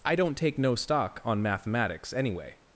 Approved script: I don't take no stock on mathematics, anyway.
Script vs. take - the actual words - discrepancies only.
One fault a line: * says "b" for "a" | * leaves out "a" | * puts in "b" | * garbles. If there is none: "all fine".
all fine